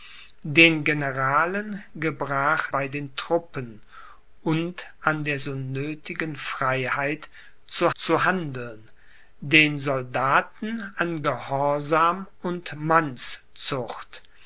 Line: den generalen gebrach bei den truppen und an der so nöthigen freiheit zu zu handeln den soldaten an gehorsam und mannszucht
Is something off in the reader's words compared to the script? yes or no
no